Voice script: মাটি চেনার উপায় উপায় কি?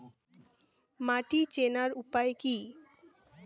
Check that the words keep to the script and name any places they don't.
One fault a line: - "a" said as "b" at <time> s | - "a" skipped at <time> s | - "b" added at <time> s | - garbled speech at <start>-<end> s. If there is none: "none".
- "উপায়" skipped at 2.3 s